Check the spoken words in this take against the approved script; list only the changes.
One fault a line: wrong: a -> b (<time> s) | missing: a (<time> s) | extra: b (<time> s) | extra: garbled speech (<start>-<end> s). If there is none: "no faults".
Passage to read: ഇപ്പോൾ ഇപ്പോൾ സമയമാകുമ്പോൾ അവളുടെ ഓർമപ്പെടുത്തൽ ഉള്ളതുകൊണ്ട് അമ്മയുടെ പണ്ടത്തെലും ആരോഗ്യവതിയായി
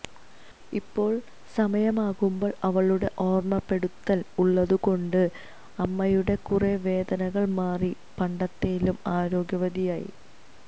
missing: ഇപ്പോൾ (1.1 s)
extra: കുറെ വേദനകൾ മാറി (6.5 s)